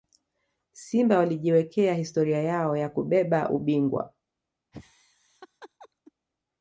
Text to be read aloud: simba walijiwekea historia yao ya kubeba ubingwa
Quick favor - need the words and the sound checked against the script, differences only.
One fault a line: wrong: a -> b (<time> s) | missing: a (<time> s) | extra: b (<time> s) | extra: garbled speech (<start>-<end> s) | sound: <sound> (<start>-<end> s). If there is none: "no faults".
sound: laugh (4.7-6.1 s)